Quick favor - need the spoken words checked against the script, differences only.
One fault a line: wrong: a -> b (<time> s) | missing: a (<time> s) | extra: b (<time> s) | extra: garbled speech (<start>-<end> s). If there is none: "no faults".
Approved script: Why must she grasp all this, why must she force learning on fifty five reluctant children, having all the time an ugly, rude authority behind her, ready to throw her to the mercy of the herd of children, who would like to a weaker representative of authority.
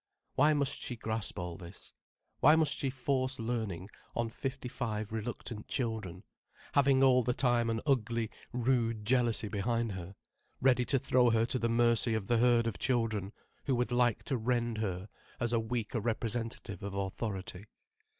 wrong: authority -> jealousy (9.1 s)
extra: rend her as (14.4 s)